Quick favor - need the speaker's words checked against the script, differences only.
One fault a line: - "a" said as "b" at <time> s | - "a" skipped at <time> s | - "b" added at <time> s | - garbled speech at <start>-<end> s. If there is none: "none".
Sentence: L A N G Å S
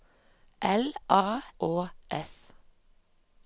- "N G" skipped at 1.4 s